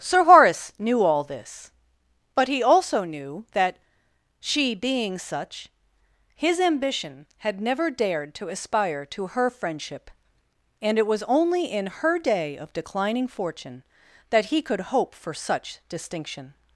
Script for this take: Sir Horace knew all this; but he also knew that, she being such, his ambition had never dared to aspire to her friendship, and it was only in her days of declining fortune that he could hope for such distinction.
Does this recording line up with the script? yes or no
no